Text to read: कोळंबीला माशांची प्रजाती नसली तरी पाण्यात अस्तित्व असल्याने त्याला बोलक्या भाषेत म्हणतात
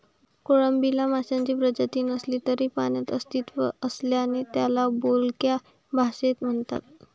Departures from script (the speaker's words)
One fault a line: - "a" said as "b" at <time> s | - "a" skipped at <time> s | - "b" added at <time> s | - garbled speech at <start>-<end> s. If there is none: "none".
none